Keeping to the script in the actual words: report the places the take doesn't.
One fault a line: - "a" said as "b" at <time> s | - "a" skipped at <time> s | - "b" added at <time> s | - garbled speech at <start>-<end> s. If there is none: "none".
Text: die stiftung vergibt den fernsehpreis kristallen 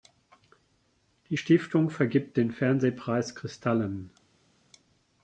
none